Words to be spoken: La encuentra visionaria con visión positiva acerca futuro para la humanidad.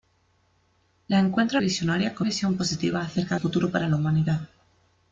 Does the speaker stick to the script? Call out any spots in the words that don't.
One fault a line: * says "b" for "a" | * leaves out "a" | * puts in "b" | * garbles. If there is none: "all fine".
all fine